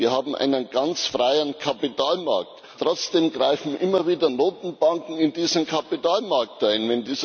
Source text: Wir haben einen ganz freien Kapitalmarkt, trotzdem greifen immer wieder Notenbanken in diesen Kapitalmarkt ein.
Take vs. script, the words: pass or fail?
pass